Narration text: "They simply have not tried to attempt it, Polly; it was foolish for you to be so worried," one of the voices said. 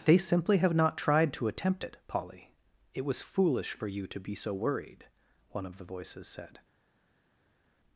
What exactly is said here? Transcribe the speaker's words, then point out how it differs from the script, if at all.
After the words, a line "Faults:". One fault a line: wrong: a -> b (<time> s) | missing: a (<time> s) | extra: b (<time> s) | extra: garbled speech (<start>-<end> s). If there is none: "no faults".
"They simply have not tried to attempt it, Polly; it was foolish for you to be so worried," one of the voices said.
Faults:
no faults